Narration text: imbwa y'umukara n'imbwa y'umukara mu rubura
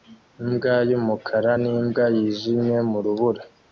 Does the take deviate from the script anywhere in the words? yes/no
yes